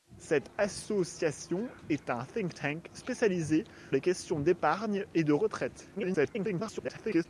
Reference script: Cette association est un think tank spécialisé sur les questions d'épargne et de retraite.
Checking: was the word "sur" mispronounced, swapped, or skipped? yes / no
yes